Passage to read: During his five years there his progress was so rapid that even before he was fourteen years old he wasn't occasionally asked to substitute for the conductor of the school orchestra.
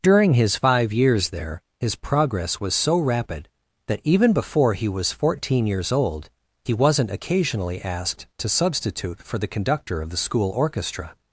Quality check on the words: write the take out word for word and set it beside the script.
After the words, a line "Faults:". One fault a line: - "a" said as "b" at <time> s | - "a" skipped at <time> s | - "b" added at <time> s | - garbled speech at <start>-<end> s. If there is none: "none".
During his five years there his progress was so rapid that even before he was fourteen years old he wasn't occasionally asked to substitute for the conductor of the school orchestra.
Faults:
none